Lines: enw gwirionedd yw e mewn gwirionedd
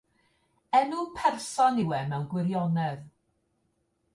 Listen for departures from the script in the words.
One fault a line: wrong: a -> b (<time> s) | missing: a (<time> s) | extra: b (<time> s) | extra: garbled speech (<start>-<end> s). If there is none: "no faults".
wrong: gwirionedd -> person (1.2 s)